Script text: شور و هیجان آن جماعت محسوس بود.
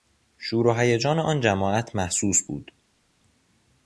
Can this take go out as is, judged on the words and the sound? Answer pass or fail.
pass